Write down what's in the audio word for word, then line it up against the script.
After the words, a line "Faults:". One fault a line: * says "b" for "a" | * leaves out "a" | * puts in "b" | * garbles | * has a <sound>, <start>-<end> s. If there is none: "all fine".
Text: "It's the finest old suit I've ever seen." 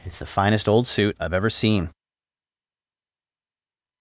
"It's the finest old suit I've ever seen."
Faults:
all fine